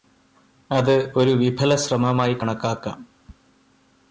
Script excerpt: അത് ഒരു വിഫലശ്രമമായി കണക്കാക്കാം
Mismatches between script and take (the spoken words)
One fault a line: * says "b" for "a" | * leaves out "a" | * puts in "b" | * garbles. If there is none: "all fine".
all fine